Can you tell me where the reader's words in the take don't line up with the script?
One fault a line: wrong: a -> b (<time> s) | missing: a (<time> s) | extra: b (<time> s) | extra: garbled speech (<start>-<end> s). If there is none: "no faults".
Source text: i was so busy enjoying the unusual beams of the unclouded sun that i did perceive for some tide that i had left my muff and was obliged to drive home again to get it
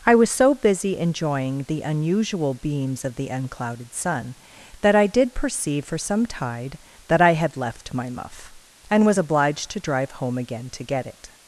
no faults